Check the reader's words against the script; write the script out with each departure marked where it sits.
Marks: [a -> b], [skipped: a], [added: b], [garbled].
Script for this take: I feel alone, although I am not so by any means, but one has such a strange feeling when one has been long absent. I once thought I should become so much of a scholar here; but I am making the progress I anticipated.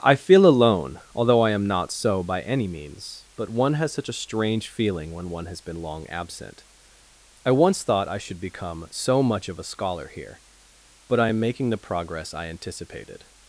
I feel alone, although I am not so by any means, but one has such a strange feeling when one has been long absent. I once thought I should become so much of a scholar here; but I am making the progress I anticipated.